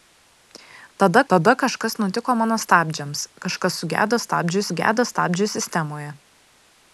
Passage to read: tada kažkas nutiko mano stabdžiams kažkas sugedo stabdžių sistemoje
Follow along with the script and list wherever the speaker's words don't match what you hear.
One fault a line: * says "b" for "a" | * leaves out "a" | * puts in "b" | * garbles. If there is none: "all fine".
* puts in "tada"
* puts in "sugedo stabdžių"